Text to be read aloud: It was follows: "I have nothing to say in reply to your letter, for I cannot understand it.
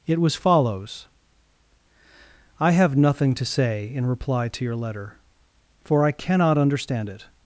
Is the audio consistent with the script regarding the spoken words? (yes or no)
yes